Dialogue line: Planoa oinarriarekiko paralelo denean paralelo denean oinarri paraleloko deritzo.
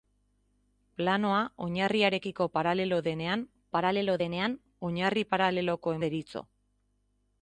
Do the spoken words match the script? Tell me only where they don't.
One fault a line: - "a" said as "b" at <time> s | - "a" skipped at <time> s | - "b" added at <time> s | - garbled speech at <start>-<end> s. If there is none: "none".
none